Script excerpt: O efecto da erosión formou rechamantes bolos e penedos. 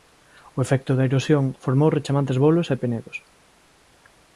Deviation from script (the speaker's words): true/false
false